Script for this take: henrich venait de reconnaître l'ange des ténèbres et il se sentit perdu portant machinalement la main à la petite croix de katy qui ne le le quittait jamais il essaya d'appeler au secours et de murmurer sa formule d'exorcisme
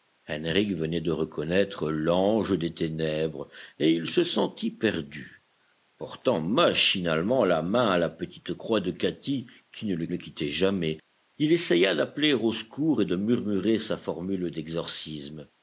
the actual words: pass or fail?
pass